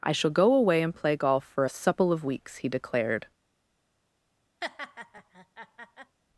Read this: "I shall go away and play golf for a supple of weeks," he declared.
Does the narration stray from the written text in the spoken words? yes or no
no